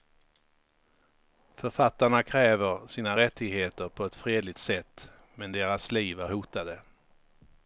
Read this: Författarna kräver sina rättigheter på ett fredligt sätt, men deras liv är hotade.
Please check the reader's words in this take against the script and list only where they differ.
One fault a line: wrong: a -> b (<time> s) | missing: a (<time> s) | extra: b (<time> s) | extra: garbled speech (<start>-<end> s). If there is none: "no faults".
no faults